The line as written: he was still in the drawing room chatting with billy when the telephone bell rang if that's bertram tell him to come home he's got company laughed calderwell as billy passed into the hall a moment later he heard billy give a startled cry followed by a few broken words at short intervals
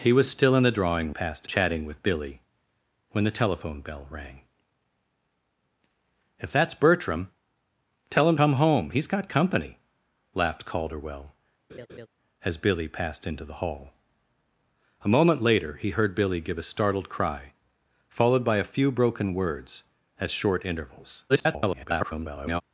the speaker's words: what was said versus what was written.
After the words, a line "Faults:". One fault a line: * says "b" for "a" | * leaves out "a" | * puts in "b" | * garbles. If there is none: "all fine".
he was still in the drawing passed chatting with billy when the telephone bell rang if that's bertram tell him come home he's got company laughed calderwell as billy passed into the hall a moment later he heard billy give a startled cry followed by a few broken words at short intervals [garbled]
Faults:
* says "passed" for "room"
* leaves out "to"
* garbles